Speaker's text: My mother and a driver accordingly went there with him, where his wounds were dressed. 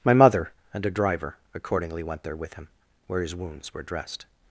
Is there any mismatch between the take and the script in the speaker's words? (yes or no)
no